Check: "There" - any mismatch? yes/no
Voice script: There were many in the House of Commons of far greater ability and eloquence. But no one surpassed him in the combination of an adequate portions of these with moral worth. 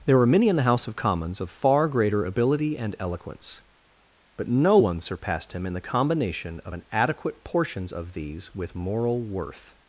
no